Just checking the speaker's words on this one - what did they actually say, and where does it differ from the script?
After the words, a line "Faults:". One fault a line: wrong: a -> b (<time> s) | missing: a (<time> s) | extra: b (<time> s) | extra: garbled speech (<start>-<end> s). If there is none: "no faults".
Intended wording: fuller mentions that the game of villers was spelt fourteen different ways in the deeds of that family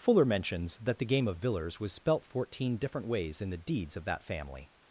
fuller mentions that the game of villers was spelt fourteen different ways in the deeds of that family
Faults:
no faults